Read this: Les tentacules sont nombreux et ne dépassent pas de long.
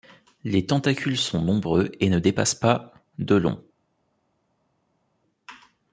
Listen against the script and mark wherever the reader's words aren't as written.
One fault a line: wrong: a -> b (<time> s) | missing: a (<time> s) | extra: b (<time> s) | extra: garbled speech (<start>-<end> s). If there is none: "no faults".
no faults